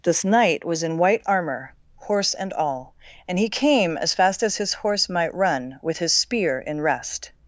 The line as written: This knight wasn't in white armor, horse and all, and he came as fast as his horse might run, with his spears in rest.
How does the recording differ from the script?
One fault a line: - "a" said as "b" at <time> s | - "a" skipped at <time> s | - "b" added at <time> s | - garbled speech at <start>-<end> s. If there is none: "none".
- "wasn't" said as "was" at 0.7 s
- "spears" said as "spear" at 6.1 s